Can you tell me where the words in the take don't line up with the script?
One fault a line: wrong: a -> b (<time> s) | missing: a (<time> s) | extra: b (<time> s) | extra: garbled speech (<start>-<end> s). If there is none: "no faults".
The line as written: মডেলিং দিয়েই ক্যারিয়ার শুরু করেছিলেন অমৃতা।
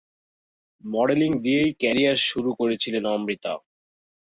no faults